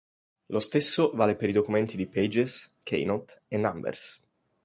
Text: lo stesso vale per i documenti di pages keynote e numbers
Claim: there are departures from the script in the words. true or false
false